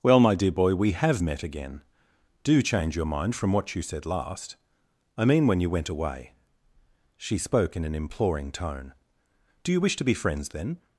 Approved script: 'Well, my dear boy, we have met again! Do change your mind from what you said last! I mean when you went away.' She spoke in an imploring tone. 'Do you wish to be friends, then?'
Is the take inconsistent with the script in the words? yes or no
no